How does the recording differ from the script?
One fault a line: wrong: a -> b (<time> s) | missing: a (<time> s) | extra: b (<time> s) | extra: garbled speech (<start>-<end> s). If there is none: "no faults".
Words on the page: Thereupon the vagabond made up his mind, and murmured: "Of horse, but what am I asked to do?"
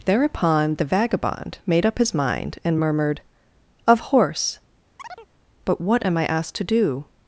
no faults